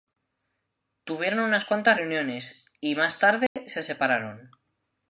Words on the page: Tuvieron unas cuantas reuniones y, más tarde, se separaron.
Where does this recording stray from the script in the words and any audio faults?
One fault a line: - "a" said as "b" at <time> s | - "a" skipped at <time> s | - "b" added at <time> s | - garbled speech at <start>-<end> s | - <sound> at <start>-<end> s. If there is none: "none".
- dropout at 3.5-3.6 s